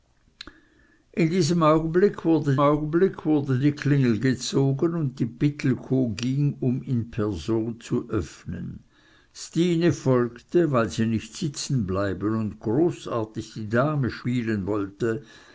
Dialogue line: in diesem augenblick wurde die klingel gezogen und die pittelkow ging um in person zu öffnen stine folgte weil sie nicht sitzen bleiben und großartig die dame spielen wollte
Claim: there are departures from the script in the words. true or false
true